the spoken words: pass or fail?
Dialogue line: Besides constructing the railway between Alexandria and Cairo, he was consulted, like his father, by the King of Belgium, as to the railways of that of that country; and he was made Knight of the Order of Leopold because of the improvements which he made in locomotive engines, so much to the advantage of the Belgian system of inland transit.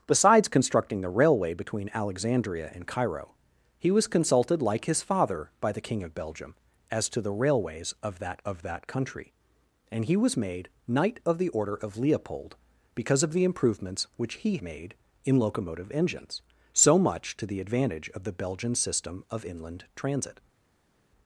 pass